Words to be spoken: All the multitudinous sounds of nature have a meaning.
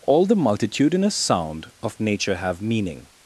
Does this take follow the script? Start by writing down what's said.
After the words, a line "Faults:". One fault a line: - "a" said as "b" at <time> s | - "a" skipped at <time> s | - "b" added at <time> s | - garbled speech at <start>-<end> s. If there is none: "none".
All the multitudinous sound of nature have meaning.
Faults:
- "sounds" said as "sound" at 1.1 s
- "a" skipped at 2.6 s